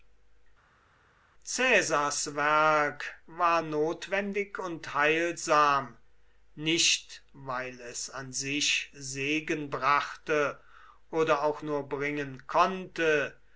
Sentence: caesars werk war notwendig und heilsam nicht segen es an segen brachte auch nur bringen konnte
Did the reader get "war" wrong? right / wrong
right